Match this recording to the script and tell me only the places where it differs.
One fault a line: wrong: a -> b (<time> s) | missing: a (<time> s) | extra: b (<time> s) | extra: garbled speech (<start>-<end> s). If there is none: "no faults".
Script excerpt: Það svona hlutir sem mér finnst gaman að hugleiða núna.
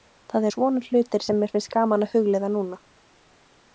no faults